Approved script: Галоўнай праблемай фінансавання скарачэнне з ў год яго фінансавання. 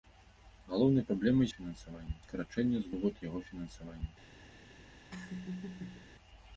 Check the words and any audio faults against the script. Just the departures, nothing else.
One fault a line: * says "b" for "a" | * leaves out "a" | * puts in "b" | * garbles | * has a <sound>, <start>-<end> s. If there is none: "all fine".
* has a laugh, 5.1-6.1 s